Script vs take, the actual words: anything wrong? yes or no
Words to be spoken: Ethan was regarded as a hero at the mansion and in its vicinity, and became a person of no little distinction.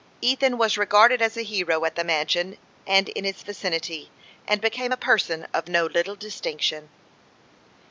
no